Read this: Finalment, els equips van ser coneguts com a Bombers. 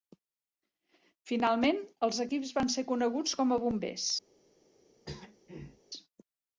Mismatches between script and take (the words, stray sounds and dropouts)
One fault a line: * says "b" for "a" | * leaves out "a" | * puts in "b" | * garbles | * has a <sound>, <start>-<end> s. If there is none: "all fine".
* has a throat clearing, 5.1-5.8 s